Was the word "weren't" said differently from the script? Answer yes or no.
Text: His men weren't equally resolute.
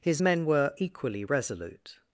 yes